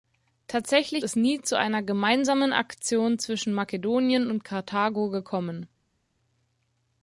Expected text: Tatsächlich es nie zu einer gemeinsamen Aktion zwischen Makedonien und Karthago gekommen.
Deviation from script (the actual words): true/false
false